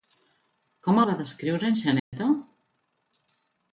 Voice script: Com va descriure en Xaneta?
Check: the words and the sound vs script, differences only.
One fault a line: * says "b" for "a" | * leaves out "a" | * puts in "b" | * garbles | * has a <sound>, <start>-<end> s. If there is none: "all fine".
* has a dropout, 2.0-2.1 s